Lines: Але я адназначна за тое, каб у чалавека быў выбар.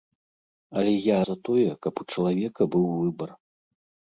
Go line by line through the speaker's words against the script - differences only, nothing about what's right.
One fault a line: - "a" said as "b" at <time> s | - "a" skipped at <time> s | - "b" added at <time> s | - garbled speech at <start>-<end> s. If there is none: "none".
- "адназначна" skipped at 1.2 s